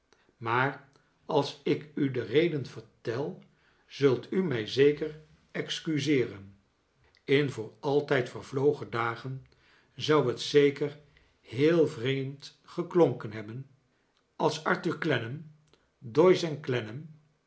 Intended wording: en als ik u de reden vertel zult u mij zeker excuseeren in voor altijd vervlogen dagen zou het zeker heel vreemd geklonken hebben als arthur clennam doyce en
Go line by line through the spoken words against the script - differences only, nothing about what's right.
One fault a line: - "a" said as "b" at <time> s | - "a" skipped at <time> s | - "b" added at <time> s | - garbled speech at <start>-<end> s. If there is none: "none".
- "en" said as "maar" at 0.4 s